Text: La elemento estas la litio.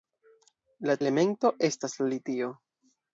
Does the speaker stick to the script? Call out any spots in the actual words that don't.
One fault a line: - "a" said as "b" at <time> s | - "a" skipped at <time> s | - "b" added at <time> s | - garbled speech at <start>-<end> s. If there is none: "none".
none